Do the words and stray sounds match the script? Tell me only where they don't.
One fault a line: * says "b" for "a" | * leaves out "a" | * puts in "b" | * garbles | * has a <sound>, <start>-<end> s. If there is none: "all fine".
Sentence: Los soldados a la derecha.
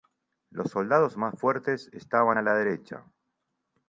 * puts in "más fuertes estaban"